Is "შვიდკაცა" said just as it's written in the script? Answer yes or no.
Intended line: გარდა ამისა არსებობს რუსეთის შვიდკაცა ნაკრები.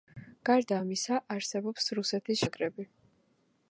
no